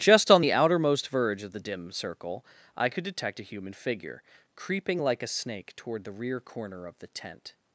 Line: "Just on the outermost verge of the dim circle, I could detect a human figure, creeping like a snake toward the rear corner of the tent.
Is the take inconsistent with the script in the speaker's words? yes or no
no